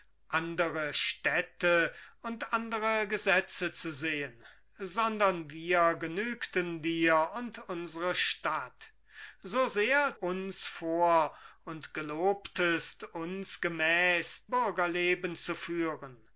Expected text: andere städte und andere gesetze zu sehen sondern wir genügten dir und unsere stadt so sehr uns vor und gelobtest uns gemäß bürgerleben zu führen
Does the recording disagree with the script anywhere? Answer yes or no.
no